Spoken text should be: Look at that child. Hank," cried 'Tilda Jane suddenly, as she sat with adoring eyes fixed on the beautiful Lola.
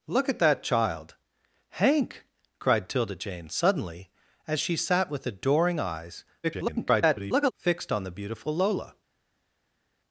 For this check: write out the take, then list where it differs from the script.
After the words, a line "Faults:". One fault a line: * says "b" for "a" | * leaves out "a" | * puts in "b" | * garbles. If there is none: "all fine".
Look at that child. Hank," cried 'Tilda Jane suddenly, as she sat with adoring eyes [garbled] fixed on the beautiful Lola.
Faults:
* garbles